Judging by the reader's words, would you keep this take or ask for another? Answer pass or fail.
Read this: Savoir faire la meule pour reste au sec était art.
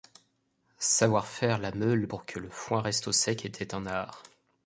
fail